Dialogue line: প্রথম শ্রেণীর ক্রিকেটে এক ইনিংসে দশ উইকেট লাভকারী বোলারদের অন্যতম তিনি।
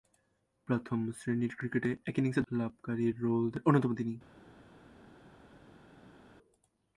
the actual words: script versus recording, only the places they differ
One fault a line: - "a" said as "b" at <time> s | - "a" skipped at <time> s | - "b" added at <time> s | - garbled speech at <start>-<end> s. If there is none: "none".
- "দশ উইকেট" skipped at 2.4 s